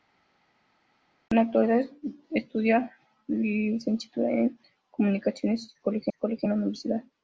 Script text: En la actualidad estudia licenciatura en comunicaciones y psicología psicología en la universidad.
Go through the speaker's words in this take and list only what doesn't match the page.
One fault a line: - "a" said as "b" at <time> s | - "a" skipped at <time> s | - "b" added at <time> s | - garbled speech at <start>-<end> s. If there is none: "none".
none